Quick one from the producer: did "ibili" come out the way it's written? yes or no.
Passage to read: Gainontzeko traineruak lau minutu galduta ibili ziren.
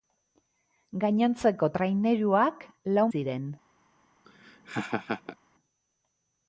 no